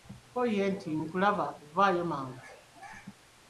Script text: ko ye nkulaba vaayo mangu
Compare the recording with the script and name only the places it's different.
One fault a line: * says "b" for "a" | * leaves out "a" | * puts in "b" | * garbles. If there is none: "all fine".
* puts in "nti"